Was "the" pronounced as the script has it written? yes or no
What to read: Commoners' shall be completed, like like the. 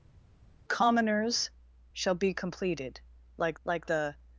yes